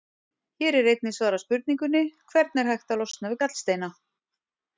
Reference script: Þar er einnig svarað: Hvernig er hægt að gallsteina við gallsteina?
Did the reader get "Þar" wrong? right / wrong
wrong